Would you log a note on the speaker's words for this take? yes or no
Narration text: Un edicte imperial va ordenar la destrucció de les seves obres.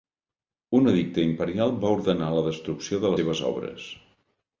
yes